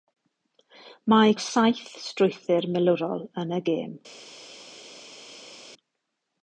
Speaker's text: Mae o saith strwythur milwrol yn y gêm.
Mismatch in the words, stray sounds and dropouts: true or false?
false